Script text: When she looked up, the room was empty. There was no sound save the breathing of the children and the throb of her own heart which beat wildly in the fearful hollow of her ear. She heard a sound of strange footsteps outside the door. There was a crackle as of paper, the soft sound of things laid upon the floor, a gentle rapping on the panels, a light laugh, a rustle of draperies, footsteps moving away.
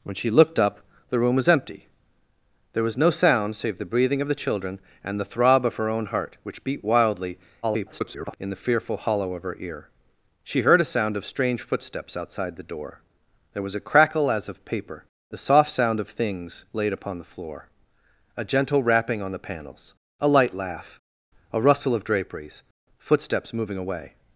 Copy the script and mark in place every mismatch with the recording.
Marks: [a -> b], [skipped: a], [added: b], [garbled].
When she looked up, the room was empty. There was no sound save the breathing of the children and the throb of her own heart which beat wildly [garbled] in the fearful hollow of her ear. She heard a sound of strange footsteps outside the door. There was a crackle as of paper, the soft sound of things laid upon the floor, a gentle rapping on the panels, a light laugh, a rustle of draperies, footsteps moving away.